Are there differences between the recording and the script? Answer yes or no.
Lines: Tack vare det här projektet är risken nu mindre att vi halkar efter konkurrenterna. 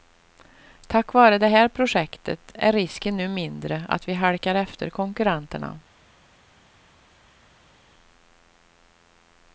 no